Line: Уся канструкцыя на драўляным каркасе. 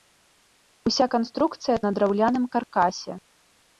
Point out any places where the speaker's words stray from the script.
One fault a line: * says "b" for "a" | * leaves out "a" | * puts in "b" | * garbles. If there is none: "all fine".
all fine